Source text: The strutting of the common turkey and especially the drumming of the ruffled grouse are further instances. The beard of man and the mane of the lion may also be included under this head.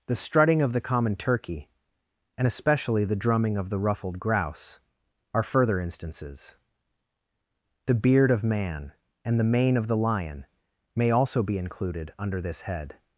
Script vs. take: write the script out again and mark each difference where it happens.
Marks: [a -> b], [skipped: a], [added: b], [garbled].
The strutting of the common turkey and especially the drumming of the ruffled grouse are further instances. The beard of man and the mane of the lion may also be included under this head.